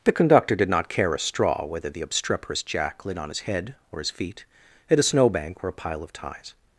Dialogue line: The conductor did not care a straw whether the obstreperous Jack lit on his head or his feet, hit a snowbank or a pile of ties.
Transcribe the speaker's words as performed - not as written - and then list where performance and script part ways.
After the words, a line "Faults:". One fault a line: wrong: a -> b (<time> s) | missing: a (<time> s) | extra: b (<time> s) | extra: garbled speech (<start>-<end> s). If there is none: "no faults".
The conductor did not care a straw whether the obstreperous Jack lit on his head or his feet, at a snowbank or a pile of ties.
Faults:
wrong: hit -> at (4.9 s)